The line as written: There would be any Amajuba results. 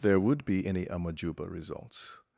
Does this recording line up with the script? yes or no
yes